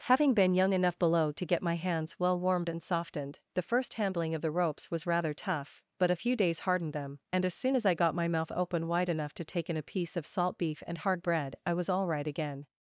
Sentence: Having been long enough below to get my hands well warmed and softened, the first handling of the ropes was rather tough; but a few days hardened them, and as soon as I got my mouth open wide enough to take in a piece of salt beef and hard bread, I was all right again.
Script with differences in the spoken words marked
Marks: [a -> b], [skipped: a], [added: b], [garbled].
Having been [long -> young] enough below to get my hands well warmed and softened, the first handling of the ropes was rather tough; but a few days hardened them, and as soon as I got my mouth open wide enough to take in a piece of salt beef and hard bread, I was all right again.